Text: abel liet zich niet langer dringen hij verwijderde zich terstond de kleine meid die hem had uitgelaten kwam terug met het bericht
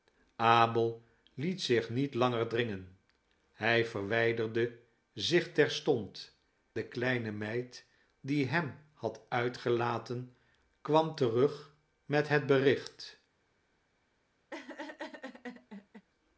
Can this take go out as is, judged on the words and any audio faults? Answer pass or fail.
fail